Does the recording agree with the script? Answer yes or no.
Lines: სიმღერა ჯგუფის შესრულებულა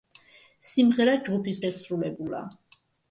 yes